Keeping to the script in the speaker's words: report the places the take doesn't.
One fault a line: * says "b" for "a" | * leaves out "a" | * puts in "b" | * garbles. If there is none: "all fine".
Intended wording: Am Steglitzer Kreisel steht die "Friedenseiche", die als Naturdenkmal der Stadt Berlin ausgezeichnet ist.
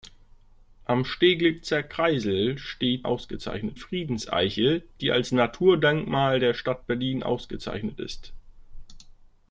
* says "ausgezeichnet" for "die"